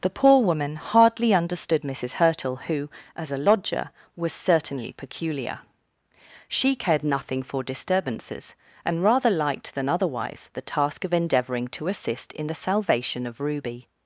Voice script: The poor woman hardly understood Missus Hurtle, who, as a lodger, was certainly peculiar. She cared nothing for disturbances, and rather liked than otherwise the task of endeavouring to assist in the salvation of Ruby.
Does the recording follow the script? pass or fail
pass